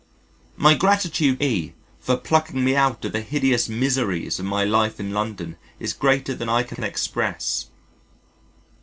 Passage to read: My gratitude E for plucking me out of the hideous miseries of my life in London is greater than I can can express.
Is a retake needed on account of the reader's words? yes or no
no